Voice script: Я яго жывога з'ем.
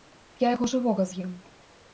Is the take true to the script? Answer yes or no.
yes